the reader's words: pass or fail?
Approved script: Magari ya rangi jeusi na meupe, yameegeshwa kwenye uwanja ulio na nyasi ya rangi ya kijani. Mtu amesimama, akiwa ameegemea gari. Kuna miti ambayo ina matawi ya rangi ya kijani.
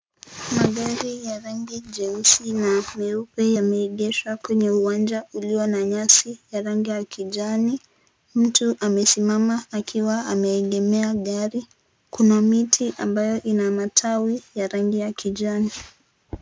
pass